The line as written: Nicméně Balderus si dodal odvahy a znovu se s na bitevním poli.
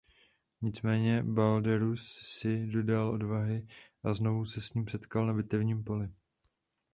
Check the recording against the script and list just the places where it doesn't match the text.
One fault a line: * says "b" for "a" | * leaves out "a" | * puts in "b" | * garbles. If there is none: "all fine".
* puts in "ním setkal"